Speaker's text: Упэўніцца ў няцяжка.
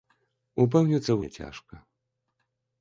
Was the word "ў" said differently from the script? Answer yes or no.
no